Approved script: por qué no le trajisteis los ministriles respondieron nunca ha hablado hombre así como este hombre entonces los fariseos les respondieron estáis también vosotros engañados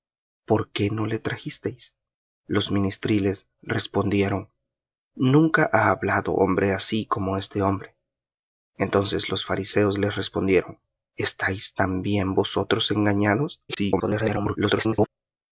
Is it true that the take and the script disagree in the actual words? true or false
true